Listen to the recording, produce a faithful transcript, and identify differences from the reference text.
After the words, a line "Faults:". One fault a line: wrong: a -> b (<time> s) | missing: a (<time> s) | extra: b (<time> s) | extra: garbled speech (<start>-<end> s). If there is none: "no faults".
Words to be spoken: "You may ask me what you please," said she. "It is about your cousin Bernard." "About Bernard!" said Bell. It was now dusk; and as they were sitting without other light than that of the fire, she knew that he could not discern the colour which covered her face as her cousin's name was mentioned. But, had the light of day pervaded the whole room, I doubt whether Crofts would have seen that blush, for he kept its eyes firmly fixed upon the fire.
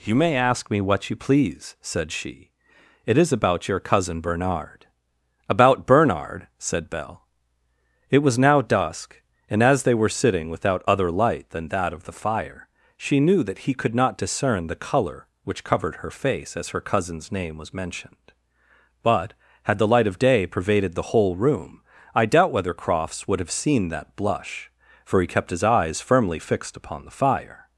"You may ask me what you please," said she. "It is about your cousin Bernard." "About Bernard!" said Bell. It was now dusk; and as they were sitting without other light than that of the fire, she knew that he could not discern the colour which covered her face as her cousin's name was mentioned. But, had the light of day pervaded the whole room, I doubt whether Crofts would have seen that blush, for he kept his eyes firmly fixed upon the fire.
Faults:
wrong: its -> his (25.5 s)